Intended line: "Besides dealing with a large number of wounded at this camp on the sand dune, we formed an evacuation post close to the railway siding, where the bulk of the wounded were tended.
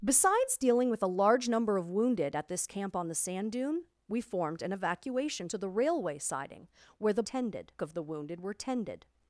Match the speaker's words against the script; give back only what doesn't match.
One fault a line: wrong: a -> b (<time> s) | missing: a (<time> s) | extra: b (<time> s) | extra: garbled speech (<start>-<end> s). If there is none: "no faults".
missing: post close (5.5 s)
wrong: bulk -> tended (7.2 s)